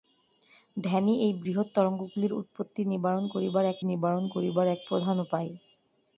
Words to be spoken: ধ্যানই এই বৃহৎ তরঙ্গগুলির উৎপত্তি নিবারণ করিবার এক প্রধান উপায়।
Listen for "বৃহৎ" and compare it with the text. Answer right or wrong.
right